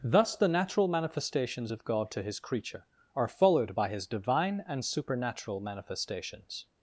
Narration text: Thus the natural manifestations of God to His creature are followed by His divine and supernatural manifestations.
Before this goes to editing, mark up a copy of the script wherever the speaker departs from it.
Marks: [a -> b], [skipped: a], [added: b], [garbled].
Thus the natural manifestations of God to His creature are followed by His divine and supernatural manifestations.